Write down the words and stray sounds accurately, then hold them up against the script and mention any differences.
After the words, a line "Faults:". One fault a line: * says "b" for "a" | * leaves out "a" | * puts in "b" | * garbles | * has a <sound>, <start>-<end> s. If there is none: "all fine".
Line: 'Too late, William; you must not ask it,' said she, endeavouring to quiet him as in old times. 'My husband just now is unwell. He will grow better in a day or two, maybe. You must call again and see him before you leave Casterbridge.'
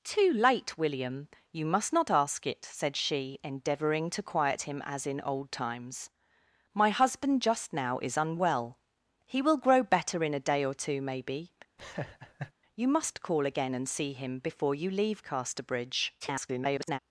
'Too late, William; you must not ask it,' said she, endeavouring to quiet him as in old times. 'My husband just now is unwell. He will grow better in a day or two, maybe. You must call again and see him before you leave Casterbridge.' [garbled]
Faults:
* has a laugh, 11.8-12.5 s
* garbles